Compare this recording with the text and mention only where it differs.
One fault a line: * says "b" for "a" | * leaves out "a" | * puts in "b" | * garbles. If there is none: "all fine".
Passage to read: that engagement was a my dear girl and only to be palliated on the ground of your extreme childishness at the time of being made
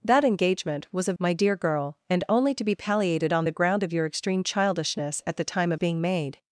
all fine